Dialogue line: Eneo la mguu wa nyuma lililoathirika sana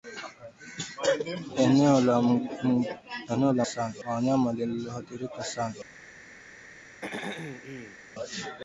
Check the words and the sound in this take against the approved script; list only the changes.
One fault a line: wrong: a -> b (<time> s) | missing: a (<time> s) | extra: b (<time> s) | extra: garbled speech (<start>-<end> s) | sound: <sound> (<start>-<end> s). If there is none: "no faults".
wrong: mguu -> sana (3.6 s)
sound: throat clearing (7.0-8.0 s)